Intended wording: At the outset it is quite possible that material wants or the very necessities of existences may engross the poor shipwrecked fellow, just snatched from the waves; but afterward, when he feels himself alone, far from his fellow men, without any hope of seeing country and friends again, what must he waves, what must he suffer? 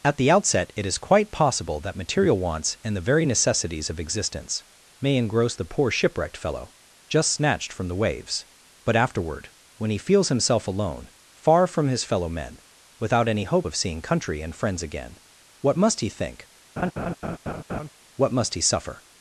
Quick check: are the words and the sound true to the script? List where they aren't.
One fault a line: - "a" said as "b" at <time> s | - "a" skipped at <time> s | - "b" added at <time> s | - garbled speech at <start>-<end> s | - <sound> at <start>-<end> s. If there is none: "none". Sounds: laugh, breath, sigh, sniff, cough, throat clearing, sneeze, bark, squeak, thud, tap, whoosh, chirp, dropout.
- "or" said as "and" at 2.8 s
- "existences" said as "existence" at 4.0 s
- "waves" said as "think" at 16.1 s
- laugh at 16.8-17.9 s